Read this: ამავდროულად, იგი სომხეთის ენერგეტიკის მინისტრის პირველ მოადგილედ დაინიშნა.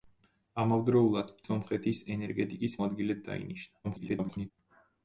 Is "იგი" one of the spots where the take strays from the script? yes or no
yes